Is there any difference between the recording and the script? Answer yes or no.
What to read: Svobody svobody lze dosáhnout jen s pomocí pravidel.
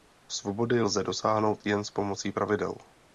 yes